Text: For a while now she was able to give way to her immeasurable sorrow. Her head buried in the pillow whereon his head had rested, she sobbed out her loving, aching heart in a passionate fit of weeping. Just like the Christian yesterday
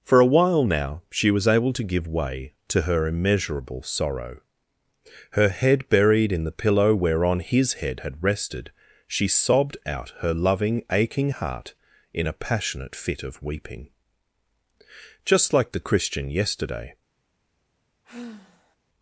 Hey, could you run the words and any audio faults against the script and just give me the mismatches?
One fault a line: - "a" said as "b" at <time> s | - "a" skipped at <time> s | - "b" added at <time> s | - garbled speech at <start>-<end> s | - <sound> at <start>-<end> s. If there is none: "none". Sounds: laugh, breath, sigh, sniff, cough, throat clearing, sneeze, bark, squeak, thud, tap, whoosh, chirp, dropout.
- sigh at 18.0-18.8 s